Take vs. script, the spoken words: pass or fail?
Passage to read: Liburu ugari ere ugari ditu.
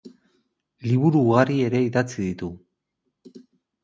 fail